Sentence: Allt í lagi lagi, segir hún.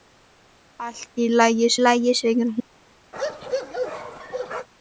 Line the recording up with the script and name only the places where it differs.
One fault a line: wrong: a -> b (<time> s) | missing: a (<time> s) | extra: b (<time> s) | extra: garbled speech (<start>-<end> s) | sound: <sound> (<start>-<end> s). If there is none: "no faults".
sound: bark (3.1-4.7 s)